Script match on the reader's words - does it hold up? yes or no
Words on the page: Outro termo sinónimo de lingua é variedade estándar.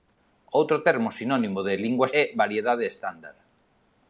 yes